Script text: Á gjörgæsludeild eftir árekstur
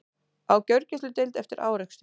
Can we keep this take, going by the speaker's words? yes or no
yes